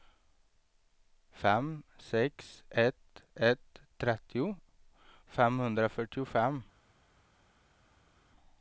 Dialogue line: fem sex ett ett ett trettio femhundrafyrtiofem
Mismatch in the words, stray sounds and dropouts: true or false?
true